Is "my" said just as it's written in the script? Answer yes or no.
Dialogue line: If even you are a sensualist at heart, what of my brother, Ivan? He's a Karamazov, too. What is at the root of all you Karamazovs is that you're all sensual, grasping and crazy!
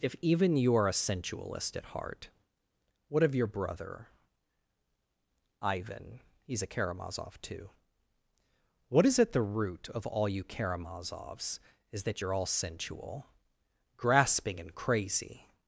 no